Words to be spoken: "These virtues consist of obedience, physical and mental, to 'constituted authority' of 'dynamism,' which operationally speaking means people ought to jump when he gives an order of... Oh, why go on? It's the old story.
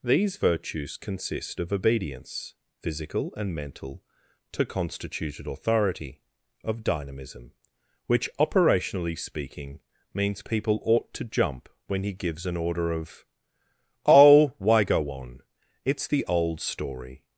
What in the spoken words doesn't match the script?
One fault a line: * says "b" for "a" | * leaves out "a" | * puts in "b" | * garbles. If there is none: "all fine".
all fine